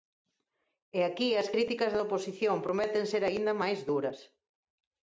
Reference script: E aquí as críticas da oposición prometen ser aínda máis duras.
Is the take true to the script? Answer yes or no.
yes